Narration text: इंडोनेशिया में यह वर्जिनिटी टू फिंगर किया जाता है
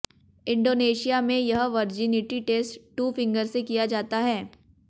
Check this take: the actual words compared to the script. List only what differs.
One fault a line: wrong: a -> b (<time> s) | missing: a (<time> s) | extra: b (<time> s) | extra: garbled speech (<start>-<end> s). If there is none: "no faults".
extra: टेस्ट (2.5 s)
extra: से (3.5 s)